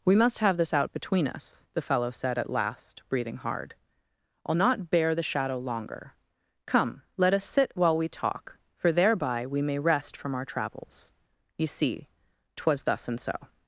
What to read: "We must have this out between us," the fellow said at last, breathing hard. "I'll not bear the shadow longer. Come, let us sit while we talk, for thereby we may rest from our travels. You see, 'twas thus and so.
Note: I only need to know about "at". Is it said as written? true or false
true